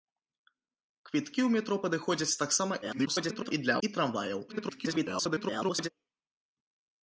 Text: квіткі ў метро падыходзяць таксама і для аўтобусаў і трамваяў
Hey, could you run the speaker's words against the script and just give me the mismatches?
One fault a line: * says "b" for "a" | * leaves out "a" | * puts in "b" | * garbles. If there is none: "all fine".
* garbles
* leaves out "аўтобусаў"
* garbles